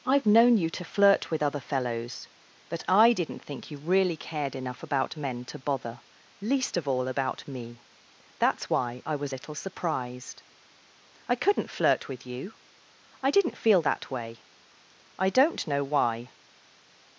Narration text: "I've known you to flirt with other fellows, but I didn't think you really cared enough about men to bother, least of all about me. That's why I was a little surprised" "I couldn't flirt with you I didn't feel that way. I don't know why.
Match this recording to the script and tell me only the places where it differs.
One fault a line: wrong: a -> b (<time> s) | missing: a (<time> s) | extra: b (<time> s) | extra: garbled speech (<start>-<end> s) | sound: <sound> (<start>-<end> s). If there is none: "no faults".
missing: a (9.3 s)